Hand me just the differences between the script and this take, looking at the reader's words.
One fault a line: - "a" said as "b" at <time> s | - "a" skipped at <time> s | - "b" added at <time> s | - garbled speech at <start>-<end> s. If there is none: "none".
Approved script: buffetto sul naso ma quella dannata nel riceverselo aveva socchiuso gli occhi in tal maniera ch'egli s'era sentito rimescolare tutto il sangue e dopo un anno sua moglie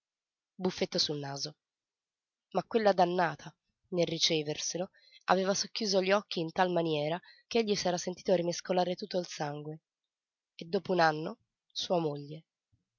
none